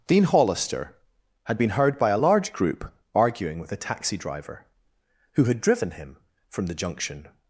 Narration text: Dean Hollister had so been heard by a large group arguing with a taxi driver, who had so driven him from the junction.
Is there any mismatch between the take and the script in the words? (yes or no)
yes